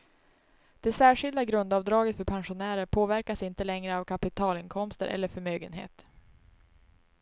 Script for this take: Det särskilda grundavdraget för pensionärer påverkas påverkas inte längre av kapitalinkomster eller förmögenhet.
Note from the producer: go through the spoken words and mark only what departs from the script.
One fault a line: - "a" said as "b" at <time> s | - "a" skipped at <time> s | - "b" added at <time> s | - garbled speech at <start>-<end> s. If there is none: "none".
- "påverkas" skipped at 3.4 s